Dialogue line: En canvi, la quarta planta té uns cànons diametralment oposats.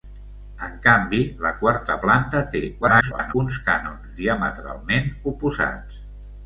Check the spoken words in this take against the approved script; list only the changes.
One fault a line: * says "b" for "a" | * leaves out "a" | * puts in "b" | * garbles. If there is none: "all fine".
* garbles